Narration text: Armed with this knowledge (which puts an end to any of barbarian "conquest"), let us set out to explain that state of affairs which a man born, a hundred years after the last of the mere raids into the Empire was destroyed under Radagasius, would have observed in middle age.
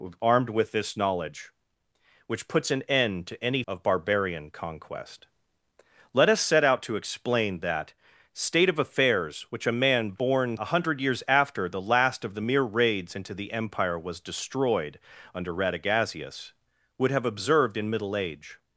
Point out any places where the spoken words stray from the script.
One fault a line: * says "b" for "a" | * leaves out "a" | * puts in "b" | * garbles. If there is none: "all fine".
all fine